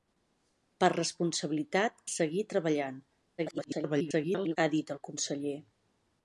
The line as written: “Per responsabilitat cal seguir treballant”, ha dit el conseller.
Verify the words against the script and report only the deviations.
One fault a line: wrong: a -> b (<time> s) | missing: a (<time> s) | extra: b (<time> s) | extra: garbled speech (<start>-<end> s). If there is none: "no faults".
missing: cal (2.0 s)
extra: garbled speech (3.4-4.6 s)